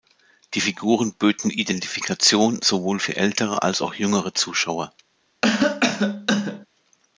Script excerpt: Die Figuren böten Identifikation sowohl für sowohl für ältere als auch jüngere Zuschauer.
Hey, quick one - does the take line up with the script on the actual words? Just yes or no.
no